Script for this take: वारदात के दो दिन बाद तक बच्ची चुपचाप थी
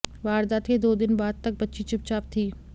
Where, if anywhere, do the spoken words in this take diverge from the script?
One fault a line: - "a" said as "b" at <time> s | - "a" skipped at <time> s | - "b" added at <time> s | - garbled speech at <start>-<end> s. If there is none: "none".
none